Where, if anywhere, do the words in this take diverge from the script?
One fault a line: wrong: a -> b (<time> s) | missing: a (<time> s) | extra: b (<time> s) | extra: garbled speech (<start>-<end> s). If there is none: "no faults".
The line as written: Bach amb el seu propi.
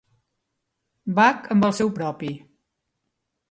no faults